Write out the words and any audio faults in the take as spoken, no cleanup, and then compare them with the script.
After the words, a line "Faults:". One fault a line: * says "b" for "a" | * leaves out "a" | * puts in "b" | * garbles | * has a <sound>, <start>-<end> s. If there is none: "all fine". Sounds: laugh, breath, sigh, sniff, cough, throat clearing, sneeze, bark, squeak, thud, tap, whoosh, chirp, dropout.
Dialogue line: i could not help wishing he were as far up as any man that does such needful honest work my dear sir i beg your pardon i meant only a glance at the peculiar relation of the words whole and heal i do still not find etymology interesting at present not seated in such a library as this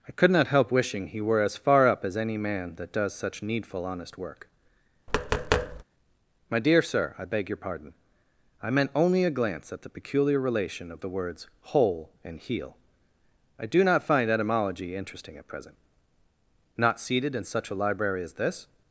i could not help wishing he were as far up as any man that does such needful honest work my dear sir i beg your pardon i meant only a glance at the peculiar relation of the words whole and heal i do not find etymology interesting at present not seated in such a library as this
Faults:
* has a tap, 5.1-5.8 s
* leaves out "still"